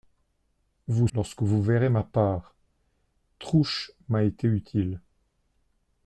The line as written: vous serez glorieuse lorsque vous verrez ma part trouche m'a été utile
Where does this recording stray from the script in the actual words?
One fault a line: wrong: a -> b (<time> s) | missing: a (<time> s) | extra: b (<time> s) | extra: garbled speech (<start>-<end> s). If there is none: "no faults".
missing: serez glorieuse (1.1 s)